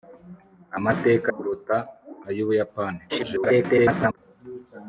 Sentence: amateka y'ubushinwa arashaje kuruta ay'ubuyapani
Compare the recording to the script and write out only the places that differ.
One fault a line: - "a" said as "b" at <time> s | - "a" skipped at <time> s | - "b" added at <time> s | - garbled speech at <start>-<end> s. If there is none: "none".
- "y'ubushinwa arashaje" skipped at 1.3 s
- garbled speech at 3.1-4.2 s